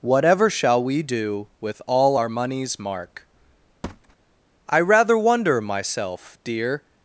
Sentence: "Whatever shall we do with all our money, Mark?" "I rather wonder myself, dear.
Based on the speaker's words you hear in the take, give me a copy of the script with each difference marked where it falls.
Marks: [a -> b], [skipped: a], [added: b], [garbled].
"Whatever shall we do with all our [money, -> moneys] Mark?" "I rather wonder myself, dear.